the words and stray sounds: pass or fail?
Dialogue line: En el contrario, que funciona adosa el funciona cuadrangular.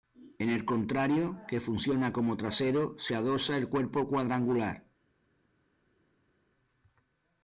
fail